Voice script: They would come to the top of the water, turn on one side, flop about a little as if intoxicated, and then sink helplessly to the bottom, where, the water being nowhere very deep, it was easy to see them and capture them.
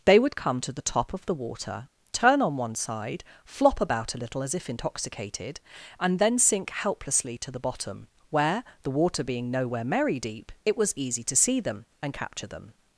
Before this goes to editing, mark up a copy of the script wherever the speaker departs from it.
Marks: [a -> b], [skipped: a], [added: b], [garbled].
They would come to the top of the water, turn on one side, flop about a little as if intoxicated, and then sink helplessly to the bottom, where, the water being nowhere [very -> merry] deep, it was easy to see them and capture them.